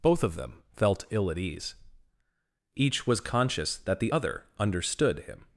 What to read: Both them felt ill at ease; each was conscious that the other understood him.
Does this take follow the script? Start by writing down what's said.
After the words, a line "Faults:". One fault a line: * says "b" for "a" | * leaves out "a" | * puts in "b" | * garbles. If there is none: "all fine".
Both of them felt ill at ease; each was conscious that the other understood him.
Faults:
* puts in "of"